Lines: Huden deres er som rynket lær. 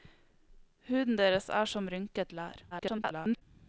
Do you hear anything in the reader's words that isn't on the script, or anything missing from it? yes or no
yes